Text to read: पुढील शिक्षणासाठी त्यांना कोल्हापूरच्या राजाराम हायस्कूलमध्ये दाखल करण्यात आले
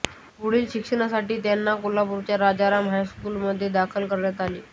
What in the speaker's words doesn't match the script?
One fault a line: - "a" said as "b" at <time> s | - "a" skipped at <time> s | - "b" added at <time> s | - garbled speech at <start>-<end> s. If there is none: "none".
none